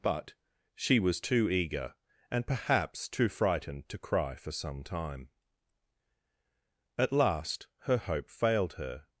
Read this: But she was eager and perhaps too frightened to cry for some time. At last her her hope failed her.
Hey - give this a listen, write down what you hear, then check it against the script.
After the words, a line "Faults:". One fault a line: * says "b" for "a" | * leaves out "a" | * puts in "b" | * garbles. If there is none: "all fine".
But she was too eager and perhaps too frightened to cry for some time. At last her hope failed her.
Faults:
* puts in "too"
* leaves out "her"